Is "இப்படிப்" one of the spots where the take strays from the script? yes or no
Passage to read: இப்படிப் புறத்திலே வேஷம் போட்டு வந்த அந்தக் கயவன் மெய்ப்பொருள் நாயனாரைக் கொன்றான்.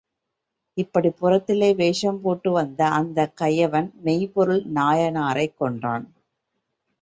no